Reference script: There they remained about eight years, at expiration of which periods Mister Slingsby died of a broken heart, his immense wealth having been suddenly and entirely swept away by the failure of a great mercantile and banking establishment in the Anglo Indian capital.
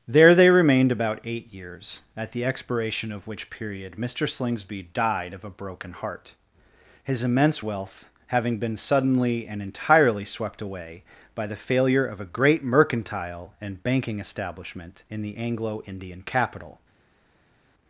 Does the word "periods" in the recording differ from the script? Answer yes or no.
yes